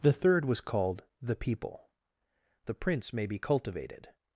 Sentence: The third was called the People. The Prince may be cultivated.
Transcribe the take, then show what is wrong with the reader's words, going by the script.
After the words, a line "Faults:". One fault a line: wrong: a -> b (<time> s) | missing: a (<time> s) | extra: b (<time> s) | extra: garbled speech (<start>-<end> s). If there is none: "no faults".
The third was called the People. The Prince may be cultivated.
Faults:
no faults